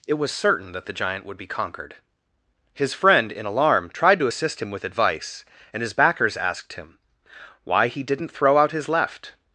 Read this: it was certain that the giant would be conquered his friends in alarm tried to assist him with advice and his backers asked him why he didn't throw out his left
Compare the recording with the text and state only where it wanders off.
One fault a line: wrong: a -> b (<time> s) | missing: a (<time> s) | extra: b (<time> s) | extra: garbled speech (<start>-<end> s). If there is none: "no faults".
wrong: friends -> friend (2.9 s)